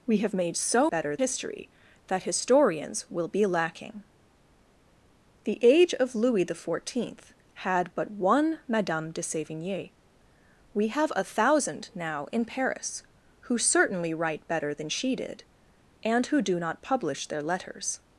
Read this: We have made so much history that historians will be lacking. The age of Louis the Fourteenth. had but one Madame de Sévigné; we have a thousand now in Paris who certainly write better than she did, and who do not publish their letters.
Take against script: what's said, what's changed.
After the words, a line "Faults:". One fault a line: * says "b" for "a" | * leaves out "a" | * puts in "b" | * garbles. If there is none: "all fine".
We have made so better history that historians will be lacking. The age of Louis the Fourteenth. had but one Madame de Sévigné; we have a thousand now in Paris who certainly write better than she did, and who do not publish their letters.
Faults:
* says "better" for "much"